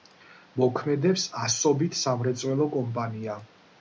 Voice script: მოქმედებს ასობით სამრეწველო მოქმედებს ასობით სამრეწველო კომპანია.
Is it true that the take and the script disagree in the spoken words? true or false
true